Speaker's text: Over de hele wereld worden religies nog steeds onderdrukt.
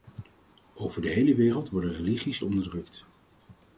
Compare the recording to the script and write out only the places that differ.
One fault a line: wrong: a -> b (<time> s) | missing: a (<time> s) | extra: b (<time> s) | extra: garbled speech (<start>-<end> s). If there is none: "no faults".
missing: nog steeds (2.4 s)